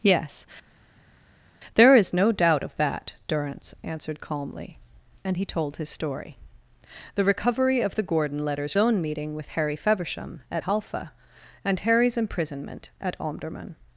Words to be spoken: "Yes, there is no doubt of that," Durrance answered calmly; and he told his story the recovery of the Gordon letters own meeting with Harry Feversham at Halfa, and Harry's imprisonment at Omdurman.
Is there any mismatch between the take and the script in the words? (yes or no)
no